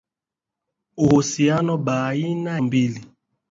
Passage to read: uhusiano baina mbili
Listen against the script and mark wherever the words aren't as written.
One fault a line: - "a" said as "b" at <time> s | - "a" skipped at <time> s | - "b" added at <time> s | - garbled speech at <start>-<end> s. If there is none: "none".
none